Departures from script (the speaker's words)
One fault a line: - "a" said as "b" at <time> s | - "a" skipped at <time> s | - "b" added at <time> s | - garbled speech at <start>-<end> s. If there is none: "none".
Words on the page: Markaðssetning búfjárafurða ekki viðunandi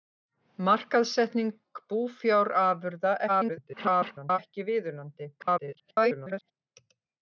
- garbled speech at 3.3-4.4 s
- garbled speech at 5.4-6.5 s